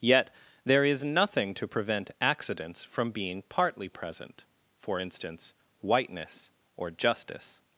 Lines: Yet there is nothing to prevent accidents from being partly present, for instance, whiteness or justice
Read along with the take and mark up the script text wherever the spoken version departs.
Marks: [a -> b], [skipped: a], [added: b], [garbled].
Yet there is nothing to prevent accidents from being partly present, for instance, whiteness or justice